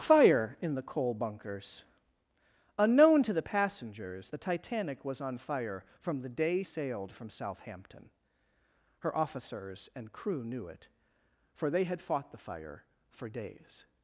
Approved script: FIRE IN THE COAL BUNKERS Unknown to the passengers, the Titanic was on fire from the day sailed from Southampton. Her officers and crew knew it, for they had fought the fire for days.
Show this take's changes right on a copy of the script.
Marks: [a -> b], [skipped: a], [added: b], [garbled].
FIRE IN THE COAL BUNKERS Unknown to the passengers, the Titanic was on fire from the day sailed from Southampton. Her officers and crew knew it, for they had fought the fire for days.